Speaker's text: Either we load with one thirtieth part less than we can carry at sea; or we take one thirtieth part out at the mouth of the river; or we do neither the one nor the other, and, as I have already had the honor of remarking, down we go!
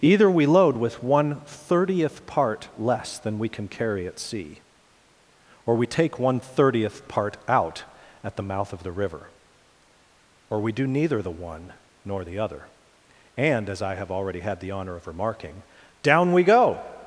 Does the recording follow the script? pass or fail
pass